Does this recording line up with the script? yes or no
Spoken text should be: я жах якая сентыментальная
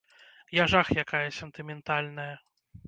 yes